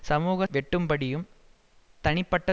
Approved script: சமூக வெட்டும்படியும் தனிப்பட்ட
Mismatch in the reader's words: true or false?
false